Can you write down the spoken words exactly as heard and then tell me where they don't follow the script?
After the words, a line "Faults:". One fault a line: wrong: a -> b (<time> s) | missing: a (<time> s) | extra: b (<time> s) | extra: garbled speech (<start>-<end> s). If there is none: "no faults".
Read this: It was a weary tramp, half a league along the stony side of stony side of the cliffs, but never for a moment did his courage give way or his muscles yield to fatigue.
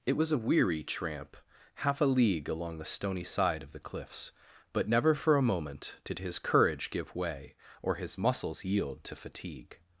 It was a weary tramp, half a league along the stony side of the cliffs, but never for a moment did his courage give way or his muscles yield to fatigue.
Faults:
missing: stony side of (3.7 s)